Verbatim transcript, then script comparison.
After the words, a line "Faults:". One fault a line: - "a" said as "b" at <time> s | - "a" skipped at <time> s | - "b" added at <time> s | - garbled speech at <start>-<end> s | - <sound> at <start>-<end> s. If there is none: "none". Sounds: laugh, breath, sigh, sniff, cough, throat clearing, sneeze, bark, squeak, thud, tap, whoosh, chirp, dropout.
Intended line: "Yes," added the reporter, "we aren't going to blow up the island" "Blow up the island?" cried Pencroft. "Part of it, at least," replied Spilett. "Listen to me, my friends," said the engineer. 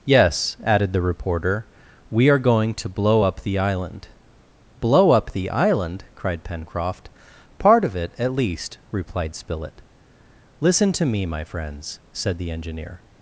"Yes," added the reporter, "we are going to blow up the island" "Blow up the island?" cried Pencroft. "Part of it, at least," replied Spilett. "Listen to me, my friends," said the engineer.
Faults:
- "aren't" said as "are" at 2.3 s